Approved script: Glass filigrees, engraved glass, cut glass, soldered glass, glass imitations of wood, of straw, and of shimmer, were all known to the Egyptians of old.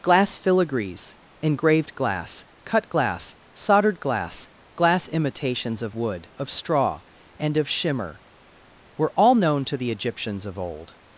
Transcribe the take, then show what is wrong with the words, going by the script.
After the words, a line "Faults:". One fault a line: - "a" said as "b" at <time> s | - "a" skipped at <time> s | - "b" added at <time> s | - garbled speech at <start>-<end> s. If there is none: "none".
Glass filigrees, engraved glass, cut glass, soldered glass, glass imitations of wood, of straw, and of shimmer, were all known to the Egyptians of old.
Faults:
none